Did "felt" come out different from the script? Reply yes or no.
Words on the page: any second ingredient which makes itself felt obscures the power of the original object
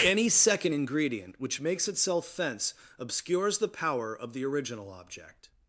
yes